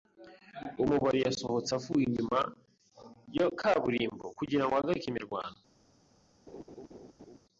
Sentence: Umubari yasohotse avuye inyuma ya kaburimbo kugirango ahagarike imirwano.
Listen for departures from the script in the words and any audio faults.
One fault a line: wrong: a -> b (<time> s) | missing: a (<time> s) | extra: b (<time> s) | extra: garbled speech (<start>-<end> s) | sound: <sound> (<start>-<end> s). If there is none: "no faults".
sound: laugh (6.5-7.4 s)